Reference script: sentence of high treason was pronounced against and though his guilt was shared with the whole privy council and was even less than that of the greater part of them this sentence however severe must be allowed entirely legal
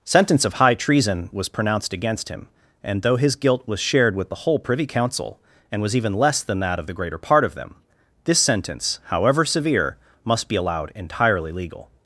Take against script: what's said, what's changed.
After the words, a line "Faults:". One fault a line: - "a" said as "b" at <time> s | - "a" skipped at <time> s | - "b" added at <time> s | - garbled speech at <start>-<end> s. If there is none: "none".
sentence of high treason was pronounced against him and though his guilt was shared with the whole privy council and was even less than that of the greater part of them this sentence however severe must be allowed entirely legal
Faults:
- "him" added at 2.3 s